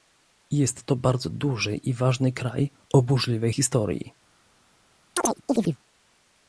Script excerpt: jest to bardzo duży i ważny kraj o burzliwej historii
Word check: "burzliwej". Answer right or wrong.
right